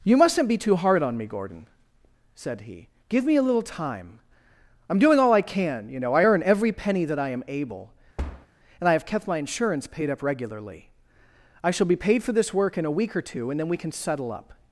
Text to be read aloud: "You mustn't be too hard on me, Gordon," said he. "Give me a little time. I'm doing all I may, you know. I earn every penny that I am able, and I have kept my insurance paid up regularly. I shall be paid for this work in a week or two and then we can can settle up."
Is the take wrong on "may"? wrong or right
wrong